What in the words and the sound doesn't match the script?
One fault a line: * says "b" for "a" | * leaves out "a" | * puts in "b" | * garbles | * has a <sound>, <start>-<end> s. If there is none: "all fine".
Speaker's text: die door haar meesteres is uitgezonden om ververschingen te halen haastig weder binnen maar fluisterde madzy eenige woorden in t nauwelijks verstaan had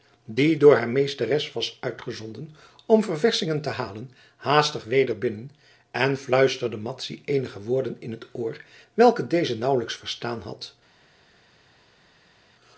* says "was" for "is"
* says "en" for "maar"
* puts in "oor welke deze"